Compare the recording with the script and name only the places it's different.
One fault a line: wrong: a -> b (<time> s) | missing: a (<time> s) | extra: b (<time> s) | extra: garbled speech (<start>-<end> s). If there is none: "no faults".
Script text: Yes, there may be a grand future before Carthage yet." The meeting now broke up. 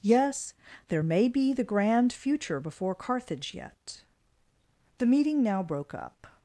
wrong: a -> the (1.5 s)